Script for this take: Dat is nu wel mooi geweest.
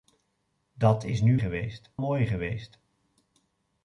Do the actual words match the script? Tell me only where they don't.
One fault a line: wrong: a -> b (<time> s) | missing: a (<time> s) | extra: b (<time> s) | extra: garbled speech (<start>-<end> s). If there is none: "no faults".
wrong: wel -> geweest (1.4 s)